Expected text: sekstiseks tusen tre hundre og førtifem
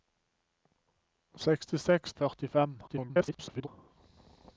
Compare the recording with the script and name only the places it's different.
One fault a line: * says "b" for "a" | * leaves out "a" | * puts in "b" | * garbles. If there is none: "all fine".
* leaves out "tusen tre hundre"
* garbles